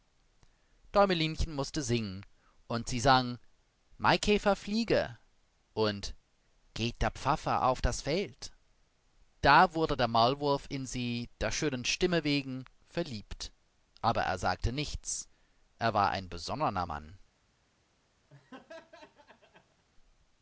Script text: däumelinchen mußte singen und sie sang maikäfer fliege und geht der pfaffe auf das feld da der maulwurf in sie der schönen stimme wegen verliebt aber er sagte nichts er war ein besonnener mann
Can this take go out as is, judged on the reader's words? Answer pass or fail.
fail